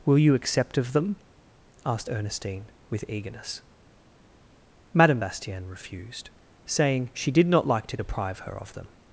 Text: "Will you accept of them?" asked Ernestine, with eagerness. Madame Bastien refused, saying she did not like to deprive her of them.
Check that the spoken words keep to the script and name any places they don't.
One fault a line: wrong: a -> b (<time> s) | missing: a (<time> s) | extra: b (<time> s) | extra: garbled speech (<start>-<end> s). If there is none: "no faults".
no faults